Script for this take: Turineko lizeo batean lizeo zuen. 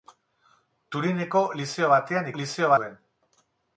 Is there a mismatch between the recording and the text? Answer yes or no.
no